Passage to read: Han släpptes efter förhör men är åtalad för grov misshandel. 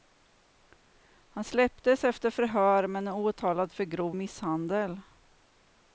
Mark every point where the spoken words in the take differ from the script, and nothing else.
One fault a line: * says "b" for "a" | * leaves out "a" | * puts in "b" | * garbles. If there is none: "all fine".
all fine